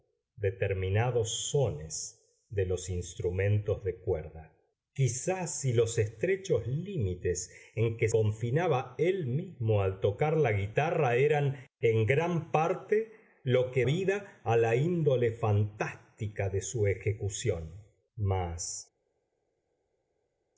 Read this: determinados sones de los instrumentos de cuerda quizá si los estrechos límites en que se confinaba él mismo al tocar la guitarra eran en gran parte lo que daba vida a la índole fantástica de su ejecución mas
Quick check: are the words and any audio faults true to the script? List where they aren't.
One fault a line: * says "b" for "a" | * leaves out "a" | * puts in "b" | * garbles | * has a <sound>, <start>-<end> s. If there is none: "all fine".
* leaves out "se"
* leaves out "daba"